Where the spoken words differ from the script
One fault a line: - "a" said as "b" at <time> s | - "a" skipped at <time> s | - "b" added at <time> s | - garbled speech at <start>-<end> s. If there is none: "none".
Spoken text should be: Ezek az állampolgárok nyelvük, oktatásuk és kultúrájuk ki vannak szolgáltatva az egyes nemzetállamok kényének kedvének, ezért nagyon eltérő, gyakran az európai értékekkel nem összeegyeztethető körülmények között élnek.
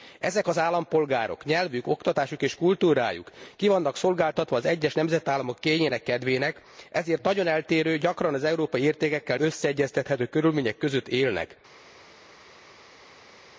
- "nem" skipped at 9.4 s